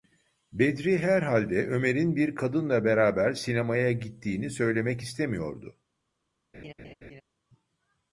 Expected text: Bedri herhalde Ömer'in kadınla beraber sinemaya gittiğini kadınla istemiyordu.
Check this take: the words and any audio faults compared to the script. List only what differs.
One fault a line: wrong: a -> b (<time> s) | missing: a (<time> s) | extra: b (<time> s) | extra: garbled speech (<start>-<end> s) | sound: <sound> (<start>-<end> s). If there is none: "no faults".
extra: bir (2.1 s)
wrong: kadınla -> söylemek (4.5 s)
sound: laugh (6.5-7.2 s)